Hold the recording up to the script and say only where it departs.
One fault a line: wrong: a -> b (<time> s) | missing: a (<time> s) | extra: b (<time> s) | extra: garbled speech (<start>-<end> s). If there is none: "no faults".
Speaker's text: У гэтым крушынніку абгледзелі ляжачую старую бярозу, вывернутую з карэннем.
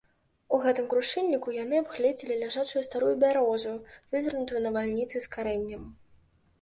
extra: яны (1.5 s)
extra: навальніцай (4.7 s)